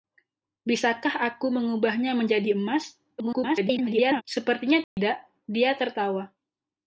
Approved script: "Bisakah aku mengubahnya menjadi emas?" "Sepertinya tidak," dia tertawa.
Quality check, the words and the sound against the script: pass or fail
fail